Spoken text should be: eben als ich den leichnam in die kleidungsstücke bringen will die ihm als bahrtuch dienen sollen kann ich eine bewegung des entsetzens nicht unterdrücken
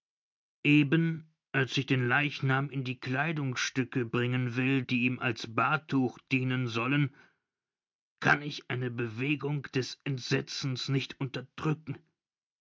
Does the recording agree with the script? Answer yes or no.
yes